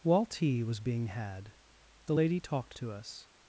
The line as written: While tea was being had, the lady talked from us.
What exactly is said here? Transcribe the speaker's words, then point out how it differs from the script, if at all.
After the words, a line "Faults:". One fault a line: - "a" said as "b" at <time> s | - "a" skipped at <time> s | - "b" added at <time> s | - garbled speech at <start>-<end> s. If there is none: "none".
While tea was being had, the lady talked to us.
Faults:
- "from" said as "to" at 2.8 s